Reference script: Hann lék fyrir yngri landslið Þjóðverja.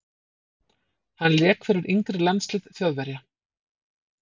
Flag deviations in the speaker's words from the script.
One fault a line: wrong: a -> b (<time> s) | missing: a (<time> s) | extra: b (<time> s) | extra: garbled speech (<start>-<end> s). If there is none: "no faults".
no faults